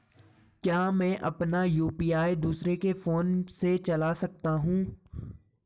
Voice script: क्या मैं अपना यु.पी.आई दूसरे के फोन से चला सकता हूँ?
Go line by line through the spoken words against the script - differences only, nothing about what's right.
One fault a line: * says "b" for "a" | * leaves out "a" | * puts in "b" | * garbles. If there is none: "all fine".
all fine